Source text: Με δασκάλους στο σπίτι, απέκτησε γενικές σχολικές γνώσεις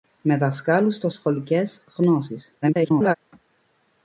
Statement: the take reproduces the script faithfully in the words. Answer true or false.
false